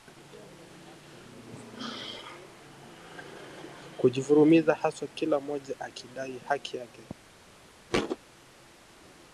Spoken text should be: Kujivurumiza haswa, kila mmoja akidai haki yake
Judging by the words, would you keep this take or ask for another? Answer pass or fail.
pass